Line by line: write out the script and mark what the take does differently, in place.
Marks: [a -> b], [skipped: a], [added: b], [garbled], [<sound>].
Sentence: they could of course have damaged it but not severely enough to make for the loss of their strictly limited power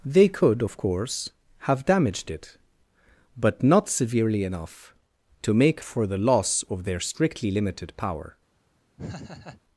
they could of course have damaged it but not severely enough to make for the loss of their strictly limited power [laugh]